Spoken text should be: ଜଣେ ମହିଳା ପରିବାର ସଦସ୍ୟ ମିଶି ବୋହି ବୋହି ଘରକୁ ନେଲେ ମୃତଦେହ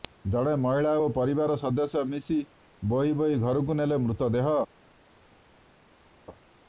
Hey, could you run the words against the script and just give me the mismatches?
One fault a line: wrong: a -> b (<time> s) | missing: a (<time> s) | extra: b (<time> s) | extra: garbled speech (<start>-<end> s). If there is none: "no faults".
extra: ଓ (1.0 s)